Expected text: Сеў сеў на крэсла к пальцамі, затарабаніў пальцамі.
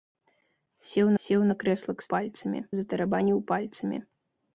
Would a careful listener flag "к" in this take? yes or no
no